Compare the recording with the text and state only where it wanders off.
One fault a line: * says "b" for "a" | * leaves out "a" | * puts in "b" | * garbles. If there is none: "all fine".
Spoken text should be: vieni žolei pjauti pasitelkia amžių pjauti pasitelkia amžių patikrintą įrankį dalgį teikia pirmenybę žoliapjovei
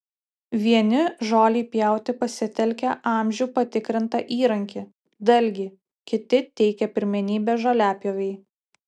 * leaves out "pjauti pasitelkia amžių"
* puts in "kiti"